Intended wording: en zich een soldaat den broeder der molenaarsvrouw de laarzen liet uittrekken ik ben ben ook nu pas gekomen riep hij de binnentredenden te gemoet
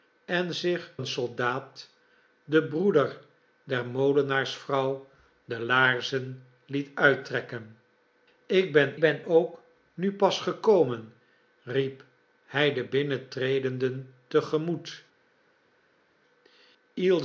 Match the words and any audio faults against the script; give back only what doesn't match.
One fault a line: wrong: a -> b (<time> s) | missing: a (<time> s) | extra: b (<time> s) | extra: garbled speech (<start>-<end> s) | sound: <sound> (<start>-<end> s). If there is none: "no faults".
no faults